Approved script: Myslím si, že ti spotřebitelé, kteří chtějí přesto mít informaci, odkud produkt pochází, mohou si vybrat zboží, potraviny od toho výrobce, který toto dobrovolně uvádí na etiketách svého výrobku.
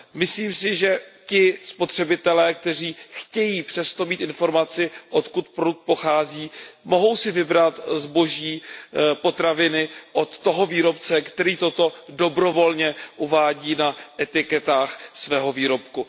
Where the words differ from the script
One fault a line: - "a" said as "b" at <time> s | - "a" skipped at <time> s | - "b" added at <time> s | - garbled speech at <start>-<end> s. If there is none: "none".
none